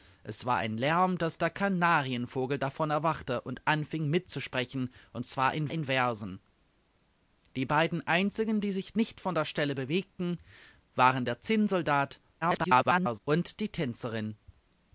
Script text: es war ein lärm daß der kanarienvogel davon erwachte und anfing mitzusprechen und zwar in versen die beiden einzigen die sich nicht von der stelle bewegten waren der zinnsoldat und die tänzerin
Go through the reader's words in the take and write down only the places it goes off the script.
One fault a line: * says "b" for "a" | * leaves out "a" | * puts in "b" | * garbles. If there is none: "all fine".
* puts in "in"
* garbles